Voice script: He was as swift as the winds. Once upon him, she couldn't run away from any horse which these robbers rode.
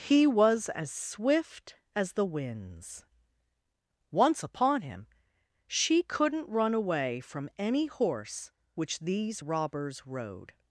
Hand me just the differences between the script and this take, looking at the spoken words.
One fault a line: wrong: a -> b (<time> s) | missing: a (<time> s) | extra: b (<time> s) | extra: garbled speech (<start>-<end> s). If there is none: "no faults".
no faults